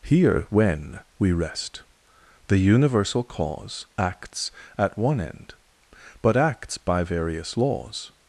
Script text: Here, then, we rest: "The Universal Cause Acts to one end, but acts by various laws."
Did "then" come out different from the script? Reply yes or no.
yes